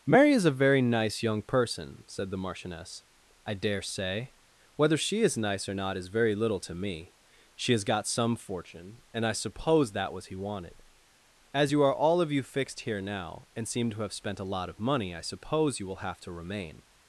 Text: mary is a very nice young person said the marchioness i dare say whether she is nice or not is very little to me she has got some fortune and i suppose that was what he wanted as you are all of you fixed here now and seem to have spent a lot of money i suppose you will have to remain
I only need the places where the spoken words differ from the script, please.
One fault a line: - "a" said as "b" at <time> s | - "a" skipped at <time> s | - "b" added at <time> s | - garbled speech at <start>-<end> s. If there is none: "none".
- "what" skipped at 10.3 s